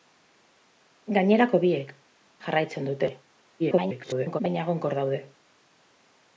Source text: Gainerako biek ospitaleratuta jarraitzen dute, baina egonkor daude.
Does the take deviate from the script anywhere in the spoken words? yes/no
yes